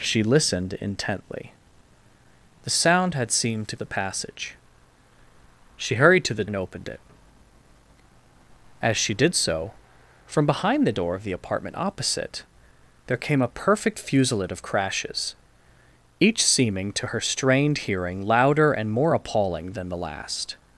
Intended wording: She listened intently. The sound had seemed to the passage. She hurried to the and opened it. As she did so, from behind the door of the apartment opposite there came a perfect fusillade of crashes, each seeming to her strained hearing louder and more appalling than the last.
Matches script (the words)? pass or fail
pass